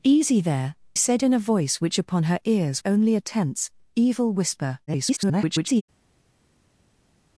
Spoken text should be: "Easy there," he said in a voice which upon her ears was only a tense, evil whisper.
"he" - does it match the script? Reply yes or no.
no